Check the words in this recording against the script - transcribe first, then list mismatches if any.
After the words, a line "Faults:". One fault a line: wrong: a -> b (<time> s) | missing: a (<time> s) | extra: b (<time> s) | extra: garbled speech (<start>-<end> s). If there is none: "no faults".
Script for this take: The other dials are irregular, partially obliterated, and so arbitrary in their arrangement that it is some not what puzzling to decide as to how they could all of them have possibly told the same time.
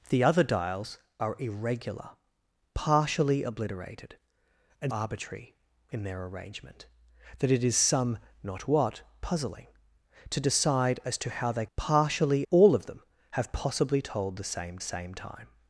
The other dials are irregular, partially obliterated, and arbitrary in their arrangement that it is some not what puzzling to decide as to how they partially all of them have possibly told the same same time.
Faults:
missing: so (4.9 s)
wrong: could -> partially (11.8 s)
extra: same (14.8 s)